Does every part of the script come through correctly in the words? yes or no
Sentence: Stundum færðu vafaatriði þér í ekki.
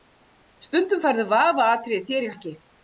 yes